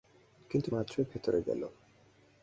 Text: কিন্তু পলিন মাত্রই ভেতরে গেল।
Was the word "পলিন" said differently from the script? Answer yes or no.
yes